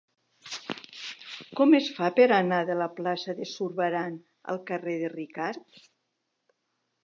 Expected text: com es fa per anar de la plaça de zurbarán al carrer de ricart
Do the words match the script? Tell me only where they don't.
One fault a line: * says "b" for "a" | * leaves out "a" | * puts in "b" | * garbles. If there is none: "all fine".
all fine